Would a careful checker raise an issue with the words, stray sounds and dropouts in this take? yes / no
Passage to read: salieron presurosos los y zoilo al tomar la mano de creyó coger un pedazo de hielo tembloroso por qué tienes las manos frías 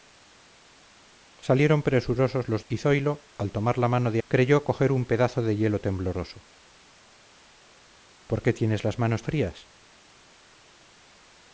no